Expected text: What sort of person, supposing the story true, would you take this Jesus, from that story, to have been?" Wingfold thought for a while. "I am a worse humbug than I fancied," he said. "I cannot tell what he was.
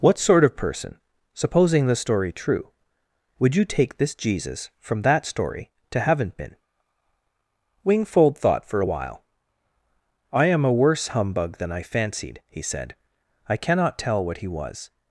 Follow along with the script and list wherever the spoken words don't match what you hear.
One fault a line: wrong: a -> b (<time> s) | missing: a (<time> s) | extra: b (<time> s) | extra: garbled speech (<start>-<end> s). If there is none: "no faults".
wrong: have -> haven't (6.0 s)